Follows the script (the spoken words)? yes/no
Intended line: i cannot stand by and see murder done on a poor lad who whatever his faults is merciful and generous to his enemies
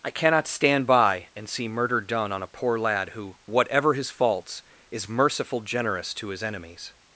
no